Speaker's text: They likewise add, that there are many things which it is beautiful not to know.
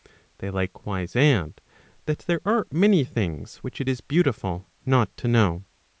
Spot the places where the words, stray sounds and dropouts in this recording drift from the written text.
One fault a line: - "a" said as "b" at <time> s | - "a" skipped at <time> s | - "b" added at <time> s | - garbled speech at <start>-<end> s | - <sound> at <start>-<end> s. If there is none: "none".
none